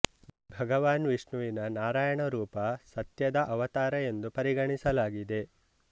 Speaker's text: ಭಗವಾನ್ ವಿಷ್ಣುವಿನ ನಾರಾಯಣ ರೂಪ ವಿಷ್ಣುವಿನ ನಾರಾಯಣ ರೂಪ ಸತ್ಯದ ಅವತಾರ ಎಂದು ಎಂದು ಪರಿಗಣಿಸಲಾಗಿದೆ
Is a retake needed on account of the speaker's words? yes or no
yes